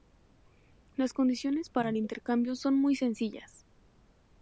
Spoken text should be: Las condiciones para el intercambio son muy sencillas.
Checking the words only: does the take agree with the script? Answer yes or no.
yes